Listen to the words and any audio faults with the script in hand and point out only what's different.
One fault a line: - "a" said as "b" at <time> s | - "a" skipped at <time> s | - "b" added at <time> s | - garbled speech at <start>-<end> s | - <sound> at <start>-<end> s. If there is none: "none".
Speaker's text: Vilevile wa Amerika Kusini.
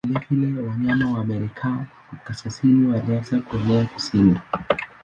- "wanyama" added at 0.7 s
- "Kaskazini walianza kuenea" added at 2.2 s